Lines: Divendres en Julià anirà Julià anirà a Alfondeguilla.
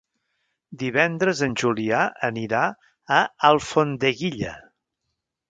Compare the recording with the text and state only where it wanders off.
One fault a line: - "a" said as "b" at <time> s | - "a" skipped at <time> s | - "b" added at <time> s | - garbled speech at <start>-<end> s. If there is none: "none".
- "Julià anirà" skipped at 2.6 s